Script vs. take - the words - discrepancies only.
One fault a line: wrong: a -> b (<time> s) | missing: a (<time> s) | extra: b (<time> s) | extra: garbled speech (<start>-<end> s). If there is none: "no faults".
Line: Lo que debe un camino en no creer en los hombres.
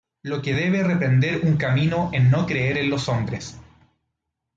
extra: reprender (0.8 s)